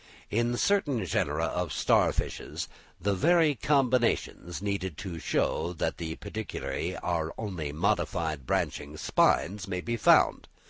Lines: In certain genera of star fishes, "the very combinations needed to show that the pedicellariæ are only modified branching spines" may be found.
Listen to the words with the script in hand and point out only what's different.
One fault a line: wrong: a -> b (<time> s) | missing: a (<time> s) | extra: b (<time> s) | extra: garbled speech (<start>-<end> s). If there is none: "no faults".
no faults